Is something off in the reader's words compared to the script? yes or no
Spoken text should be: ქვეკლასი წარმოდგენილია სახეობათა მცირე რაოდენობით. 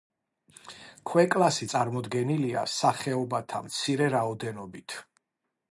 no